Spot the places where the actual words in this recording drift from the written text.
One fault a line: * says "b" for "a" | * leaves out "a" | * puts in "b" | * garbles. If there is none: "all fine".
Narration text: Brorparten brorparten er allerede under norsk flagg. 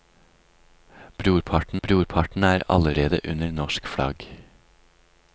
all fine